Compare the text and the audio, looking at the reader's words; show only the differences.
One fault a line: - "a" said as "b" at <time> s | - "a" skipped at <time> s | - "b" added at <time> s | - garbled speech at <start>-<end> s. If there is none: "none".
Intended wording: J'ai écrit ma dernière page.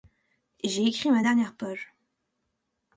none